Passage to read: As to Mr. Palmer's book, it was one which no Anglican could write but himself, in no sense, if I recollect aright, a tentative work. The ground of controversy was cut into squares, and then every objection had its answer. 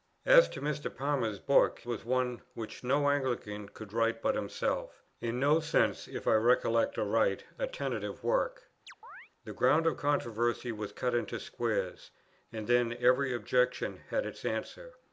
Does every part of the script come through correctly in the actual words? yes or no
no